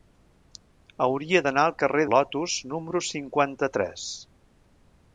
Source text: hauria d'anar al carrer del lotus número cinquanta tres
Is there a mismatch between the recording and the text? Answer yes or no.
yes